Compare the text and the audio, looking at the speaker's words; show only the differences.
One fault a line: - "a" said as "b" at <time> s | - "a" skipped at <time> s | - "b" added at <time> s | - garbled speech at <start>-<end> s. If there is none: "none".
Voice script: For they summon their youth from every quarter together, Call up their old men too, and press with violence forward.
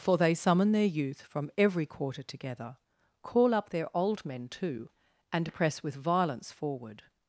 none